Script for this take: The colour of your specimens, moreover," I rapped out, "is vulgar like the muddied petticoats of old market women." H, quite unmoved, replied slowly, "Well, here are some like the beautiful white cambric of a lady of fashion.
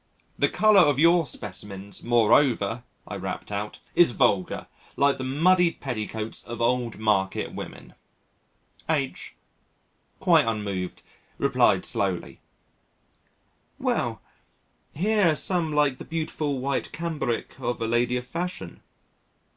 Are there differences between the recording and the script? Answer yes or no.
no